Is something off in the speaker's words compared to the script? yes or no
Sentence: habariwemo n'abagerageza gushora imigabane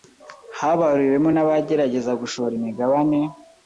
no